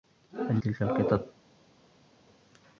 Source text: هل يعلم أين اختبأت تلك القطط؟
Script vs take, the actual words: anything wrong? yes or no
yes